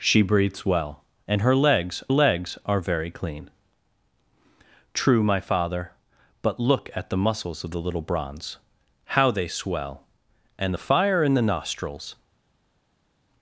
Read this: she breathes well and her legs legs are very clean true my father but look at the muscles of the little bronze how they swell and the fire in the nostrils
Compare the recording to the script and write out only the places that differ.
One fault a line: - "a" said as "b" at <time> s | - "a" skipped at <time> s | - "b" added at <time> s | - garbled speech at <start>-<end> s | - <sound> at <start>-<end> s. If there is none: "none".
none